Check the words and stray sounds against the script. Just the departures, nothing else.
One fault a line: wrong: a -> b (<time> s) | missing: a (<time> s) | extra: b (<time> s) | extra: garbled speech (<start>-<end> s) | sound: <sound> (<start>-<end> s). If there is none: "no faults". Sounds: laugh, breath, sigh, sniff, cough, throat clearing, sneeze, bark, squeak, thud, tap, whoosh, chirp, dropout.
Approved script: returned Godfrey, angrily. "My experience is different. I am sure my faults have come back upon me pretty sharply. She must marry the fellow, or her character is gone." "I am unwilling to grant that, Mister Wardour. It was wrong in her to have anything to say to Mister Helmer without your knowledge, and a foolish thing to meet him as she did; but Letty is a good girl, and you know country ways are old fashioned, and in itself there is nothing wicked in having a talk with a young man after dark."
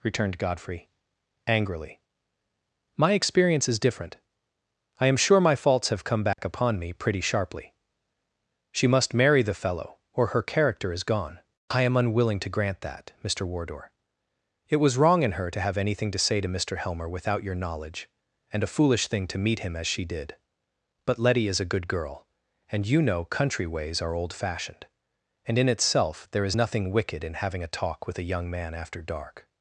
sound: dropout (6.3-6.4 s)